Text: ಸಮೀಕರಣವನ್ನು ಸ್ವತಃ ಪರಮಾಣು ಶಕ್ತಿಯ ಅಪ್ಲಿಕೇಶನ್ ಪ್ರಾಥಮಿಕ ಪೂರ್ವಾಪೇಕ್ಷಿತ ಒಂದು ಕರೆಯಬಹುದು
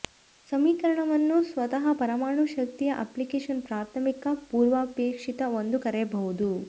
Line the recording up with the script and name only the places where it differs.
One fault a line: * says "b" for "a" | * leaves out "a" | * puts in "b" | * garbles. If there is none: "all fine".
all fine